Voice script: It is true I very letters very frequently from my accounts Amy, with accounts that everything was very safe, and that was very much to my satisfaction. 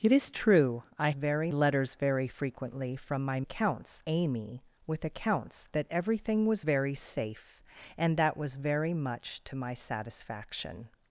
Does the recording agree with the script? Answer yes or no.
yes